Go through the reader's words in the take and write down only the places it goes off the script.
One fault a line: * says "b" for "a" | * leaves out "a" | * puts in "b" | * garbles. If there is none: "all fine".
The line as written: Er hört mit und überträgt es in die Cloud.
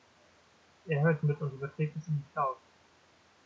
all fine